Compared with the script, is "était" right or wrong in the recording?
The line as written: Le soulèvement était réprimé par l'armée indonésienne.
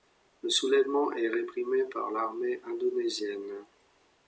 wrong